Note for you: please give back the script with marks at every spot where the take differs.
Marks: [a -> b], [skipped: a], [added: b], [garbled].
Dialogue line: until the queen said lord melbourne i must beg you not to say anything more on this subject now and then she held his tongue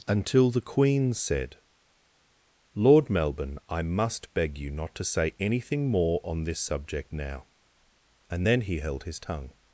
until the queen said lord melbourne i must beg you not to say anything more on this subject now and then [she -> he] held his tongue